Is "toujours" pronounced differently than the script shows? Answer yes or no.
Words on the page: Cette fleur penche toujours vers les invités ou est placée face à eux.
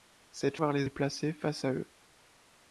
yes